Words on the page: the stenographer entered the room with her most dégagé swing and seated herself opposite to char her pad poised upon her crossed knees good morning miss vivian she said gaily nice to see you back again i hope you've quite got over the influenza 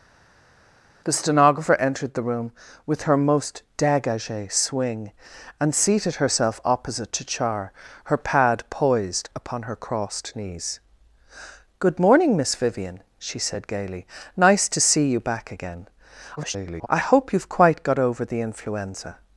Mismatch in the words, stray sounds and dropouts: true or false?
true